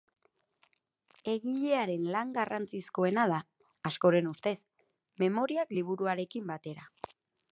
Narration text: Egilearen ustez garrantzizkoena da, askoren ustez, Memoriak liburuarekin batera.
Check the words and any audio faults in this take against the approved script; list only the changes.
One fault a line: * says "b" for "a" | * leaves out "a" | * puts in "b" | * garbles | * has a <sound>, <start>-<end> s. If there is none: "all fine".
* says "lan" for "ustez"